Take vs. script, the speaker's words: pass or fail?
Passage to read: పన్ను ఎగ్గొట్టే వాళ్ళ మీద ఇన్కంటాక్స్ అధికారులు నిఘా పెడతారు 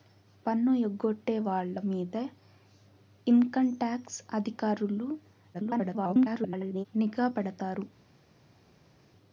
fail